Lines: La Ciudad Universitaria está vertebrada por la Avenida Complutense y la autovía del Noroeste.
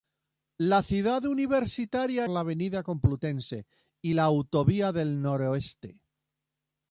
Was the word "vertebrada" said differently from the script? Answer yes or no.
yes